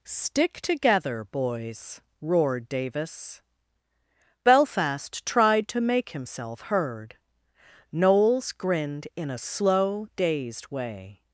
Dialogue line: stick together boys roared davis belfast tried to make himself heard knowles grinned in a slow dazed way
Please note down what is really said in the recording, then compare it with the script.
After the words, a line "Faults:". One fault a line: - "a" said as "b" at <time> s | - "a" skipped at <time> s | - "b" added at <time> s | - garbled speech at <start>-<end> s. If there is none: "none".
stick together boys roared davis belfast tried to make himself heard knowles grinned in a slow dazed way
Faults:
none